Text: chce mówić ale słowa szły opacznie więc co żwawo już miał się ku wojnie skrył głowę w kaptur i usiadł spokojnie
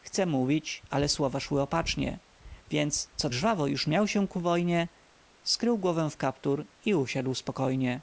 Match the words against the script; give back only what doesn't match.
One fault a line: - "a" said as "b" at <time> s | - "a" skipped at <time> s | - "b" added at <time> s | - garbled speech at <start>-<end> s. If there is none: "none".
none